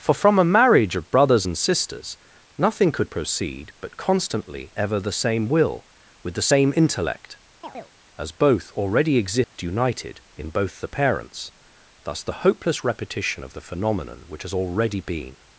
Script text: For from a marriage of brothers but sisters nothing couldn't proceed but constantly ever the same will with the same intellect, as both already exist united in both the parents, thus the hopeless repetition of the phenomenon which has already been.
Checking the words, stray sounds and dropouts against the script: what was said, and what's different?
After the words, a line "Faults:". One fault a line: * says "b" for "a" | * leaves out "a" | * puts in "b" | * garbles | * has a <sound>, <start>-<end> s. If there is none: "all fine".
For from a marriage of brothers and sisters nothing could proceed but constantly ever the same will with the same intellect, as both already exist united in both the parents, thus the hopeless repetition of the phenomenon which has already been.
Faults:
* says "and" for "but"
* says "could" for "couldn't"
* has a chirp, 7.6-7.9 s
* has a dropout, 9.4-9.6 s